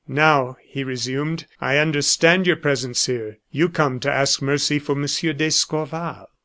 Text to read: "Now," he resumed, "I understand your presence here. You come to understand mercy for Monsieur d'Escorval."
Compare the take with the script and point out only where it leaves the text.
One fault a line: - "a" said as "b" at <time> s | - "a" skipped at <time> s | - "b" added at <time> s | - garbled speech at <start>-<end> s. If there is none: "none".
- "understand" said as "ask" at 4.1 s